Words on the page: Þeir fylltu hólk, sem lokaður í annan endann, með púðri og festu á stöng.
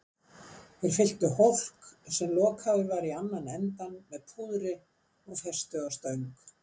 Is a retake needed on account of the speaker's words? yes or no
yes